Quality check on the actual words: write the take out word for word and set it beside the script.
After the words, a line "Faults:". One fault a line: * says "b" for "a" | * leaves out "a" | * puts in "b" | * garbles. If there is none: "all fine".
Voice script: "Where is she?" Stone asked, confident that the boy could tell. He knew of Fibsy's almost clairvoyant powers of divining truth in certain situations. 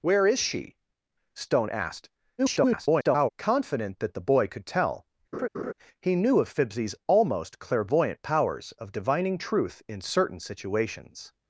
"Where is she?" Stone asked, [garbled] confident that the boy could tell. He knew of Fibsy's almost clairvoyant powers of divining truth in certain situations.
Faults:
* garbles